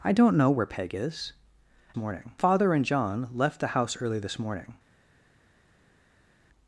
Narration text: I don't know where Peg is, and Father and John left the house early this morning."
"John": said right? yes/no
yes